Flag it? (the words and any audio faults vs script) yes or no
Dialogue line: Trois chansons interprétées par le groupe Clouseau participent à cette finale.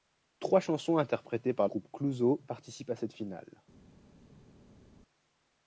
yes